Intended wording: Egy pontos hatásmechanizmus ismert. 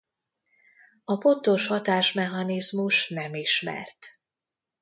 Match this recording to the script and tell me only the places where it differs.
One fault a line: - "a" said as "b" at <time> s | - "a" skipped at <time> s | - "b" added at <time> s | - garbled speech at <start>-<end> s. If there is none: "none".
- "Egy" said as "A" at 1.0 s
- "nem" added at 3.1 s